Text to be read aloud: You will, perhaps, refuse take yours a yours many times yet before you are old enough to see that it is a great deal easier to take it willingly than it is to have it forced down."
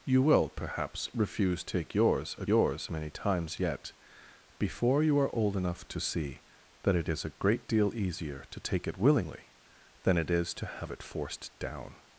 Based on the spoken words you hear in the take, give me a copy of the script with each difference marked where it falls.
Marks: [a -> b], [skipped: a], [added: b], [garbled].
You will, perhaps, refuse take yours a yours many times yet before you are old enough to see that it is a great deal easier to take it willingly than it is to have it forced down."